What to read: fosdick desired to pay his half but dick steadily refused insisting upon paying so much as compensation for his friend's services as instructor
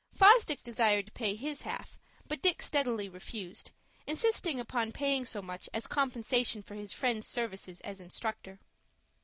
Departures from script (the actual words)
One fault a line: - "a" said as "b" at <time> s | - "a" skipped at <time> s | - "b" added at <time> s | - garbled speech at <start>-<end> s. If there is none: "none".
none